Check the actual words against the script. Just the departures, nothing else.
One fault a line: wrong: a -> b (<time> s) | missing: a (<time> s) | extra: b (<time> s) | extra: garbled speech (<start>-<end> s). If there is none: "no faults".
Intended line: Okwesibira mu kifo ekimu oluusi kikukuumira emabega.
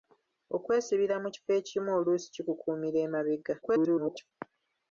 extra: garbled speech (3.6-4.3 s)